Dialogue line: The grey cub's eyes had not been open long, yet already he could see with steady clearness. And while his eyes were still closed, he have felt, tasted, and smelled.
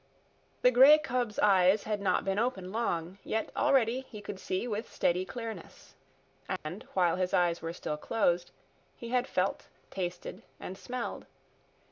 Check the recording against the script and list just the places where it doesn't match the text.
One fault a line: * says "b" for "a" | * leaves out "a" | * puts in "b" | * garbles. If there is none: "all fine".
* says "had" for "have"